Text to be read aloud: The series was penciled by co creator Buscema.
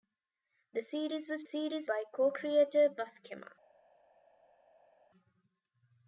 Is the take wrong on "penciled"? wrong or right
wrong